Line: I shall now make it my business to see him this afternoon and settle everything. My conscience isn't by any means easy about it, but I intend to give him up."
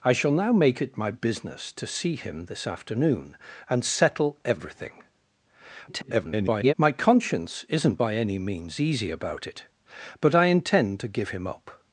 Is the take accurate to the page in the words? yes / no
no